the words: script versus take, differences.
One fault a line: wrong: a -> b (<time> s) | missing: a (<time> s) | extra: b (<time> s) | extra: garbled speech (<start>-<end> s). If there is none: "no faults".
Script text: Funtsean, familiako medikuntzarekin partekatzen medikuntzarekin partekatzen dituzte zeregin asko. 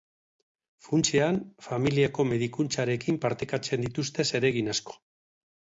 missing: medikuntzarekin partekatzen (3.9 s)